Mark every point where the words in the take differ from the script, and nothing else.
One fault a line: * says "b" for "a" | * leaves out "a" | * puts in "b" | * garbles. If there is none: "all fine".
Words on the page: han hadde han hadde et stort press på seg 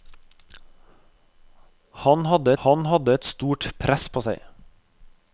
all fine